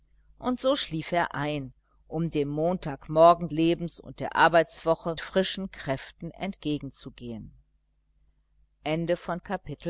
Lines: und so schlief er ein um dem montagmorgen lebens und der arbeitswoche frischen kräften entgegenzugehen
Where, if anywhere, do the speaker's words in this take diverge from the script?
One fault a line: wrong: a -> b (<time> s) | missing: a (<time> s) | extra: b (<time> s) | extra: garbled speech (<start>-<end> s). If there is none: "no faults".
no faults